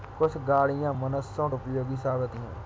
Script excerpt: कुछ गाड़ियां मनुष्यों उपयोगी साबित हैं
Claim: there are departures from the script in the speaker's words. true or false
false